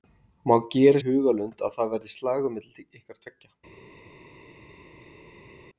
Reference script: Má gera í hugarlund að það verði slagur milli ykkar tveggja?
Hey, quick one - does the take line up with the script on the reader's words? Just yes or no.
yes